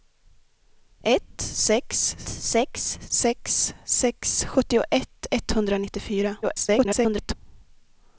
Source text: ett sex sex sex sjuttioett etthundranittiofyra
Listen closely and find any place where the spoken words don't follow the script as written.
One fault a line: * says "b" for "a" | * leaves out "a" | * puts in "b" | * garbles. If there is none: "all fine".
* puts in "sex"
* garbles